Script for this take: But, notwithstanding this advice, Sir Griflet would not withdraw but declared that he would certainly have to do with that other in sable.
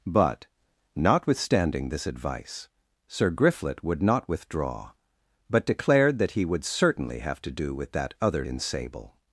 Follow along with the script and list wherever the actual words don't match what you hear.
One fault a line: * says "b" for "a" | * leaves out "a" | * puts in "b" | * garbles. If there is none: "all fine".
all fine